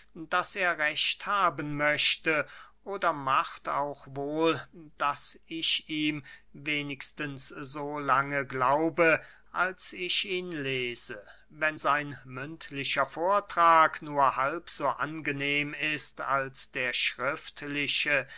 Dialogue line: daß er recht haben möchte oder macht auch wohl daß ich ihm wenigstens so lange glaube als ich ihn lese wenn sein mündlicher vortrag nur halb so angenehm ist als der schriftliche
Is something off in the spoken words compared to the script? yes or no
no